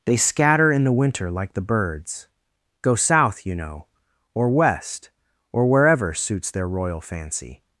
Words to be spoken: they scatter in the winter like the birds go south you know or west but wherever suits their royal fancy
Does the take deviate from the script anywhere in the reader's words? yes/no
yes